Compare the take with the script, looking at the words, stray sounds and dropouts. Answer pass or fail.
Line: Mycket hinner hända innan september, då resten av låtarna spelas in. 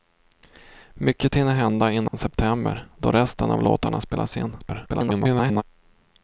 fail